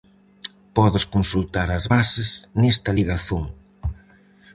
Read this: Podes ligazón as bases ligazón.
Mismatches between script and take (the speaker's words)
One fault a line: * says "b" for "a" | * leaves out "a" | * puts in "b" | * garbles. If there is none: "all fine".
* says "consultar" for "ligazón"
* puts in "nesta"